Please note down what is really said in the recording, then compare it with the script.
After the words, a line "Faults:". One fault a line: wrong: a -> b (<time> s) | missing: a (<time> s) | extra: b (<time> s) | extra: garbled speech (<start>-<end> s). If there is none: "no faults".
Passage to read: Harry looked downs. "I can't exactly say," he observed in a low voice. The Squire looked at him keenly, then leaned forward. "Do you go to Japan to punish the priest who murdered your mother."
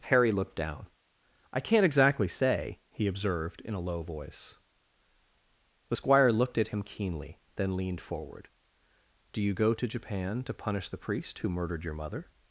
Harry looked down. "I can't exactly say," he observed in a low voice. The Squire looked at him keenly, then leaned forward. "Do you go to Japan to punish the priest who murdered your mother."
Faults:
wrong: downs -> down (0.6 s)